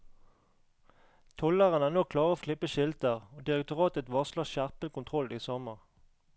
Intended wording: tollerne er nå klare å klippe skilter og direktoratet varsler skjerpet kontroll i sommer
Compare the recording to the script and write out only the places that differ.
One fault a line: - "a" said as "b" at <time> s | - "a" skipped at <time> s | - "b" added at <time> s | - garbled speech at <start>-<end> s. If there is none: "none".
none